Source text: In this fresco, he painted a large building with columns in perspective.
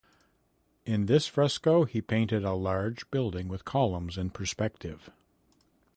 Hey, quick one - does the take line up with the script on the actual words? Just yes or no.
yes